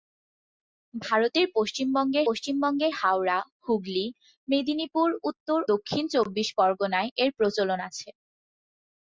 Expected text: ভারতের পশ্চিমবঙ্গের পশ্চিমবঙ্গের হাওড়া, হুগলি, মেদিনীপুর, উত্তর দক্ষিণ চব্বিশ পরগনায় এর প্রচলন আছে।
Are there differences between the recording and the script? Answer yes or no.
no